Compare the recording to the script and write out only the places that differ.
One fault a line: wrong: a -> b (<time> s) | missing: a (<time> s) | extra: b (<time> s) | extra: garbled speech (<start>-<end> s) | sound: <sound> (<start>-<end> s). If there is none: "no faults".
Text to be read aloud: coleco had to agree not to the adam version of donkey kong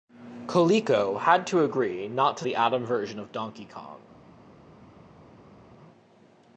no faults